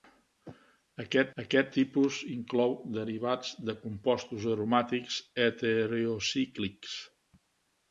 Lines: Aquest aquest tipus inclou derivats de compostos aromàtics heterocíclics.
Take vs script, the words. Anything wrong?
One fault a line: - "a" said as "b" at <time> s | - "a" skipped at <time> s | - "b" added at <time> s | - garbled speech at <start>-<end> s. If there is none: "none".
none